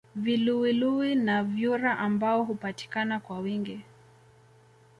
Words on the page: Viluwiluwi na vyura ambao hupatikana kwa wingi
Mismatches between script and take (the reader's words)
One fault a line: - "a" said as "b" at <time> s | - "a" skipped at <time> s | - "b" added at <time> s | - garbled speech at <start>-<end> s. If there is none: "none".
none